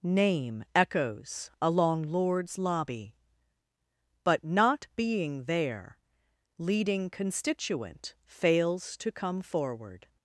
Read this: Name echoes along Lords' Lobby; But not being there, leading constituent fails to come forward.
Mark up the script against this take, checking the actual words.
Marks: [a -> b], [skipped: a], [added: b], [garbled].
Name echoes along Lords' Lobby; But not being there, leading constituent fails to come forward.